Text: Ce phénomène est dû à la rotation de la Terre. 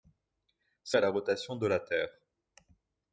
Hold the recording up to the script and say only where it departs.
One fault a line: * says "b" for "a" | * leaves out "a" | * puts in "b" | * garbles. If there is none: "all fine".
* leaves out "phénomène est dû"